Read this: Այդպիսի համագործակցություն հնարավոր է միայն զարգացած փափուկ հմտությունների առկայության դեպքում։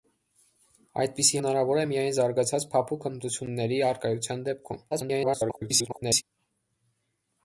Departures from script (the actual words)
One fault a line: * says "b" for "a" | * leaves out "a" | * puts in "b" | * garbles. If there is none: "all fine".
* leaves out "համագործակցություն"
* garbles